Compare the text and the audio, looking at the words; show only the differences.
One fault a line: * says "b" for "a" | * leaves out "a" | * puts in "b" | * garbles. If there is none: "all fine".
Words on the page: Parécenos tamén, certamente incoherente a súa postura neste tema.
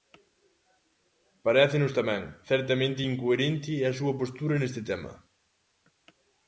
all fine